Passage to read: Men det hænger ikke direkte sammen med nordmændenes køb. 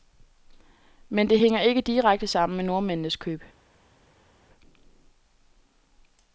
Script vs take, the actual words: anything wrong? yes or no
no